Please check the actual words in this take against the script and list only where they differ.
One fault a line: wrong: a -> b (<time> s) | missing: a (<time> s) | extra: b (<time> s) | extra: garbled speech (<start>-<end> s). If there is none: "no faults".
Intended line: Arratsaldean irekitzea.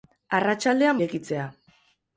no faults